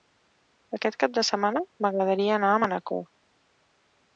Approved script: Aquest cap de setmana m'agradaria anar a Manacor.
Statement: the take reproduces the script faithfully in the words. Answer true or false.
true